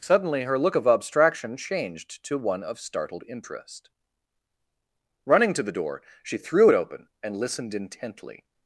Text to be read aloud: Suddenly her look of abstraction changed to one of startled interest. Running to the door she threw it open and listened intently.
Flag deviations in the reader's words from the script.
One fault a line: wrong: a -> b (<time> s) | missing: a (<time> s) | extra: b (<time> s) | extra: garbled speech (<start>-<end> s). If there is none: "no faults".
no faults